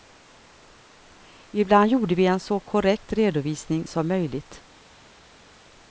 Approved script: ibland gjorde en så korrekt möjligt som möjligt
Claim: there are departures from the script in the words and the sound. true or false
true